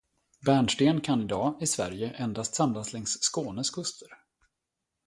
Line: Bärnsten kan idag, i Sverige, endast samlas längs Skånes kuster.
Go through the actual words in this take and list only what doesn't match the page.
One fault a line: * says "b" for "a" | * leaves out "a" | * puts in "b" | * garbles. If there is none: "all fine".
all fine